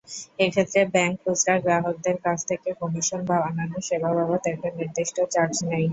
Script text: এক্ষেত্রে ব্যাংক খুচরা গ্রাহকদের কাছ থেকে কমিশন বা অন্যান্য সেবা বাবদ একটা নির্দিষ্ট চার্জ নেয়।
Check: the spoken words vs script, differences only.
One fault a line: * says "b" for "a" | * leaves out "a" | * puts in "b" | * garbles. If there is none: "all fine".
all fine